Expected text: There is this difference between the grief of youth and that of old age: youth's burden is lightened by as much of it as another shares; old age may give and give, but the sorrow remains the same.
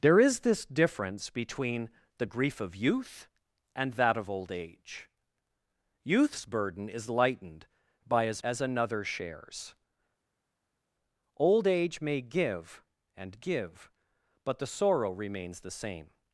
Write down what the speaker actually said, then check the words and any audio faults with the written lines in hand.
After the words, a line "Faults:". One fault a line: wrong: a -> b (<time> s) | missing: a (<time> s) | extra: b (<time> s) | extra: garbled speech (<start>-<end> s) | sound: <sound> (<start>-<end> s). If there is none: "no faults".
There is this difference between the grief of youth and that of old age: youth's burden is lightened by as as another shares; old age may give and give, but the sorrow remains the same.
Faults:
missing: much of it (8.4 s)